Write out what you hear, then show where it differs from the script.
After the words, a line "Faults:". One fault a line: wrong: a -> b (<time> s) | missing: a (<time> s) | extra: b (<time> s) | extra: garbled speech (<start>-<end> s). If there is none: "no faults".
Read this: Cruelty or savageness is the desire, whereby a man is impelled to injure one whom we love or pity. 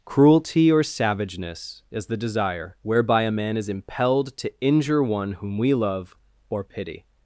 Cruelty or savageness is the desire, whereby a man is impelled to injure one whom we love or pity.
Faults:
no faults